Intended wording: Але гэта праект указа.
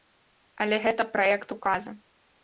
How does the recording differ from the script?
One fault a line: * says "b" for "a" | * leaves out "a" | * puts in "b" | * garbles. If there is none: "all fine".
all fine